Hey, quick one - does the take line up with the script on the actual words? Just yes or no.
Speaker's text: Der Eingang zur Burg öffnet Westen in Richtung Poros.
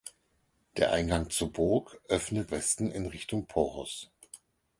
yes